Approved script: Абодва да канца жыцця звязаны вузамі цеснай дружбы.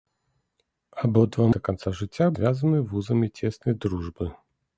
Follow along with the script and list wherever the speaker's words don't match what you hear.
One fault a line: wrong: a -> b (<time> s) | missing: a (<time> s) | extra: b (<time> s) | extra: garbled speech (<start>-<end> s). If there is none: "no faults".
no faults